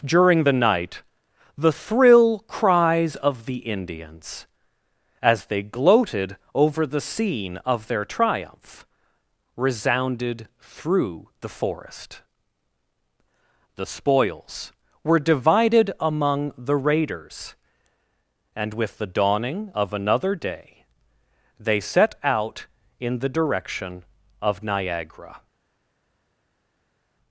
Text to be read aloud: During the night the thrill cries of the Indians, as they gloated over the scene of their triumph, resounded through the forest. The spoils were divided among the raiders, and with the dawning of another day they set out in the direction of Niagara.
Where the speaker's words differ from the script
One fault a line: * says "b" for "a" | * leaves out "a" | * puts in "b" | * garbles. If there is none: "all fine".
all fine